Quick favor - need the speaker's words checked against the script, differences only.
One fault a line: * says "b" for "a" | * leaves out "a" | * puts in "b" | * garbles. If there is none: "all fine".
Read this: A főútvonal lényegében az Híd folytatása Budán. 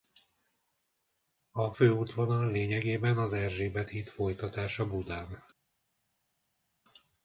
* puts in "Erzsébet"